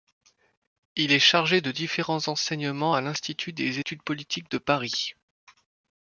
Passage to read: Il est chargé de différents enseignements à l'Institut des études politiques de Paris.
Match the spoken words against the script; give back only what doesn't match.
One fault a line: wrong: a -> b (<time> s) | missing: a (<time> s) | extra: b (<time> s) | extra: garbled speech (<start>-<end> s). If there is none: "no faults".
no faults